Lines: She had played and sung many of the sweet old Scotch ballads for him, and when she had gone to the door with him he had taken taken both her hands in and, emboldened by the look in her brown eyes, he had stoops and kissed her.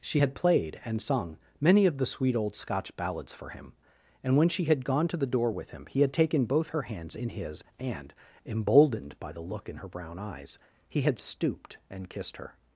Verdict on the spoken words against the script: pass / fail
fail